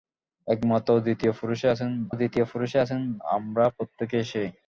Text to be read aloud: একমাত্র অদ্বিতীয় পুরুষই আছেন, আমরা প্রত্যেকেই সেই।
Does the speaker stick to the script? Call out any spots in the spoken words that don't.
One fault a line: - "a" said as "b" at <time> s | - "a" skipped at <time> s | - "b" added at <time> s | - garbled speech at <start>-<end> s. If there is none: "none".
- "অদ্বিতীয় পুরুষই আছেন" added at 2.1 s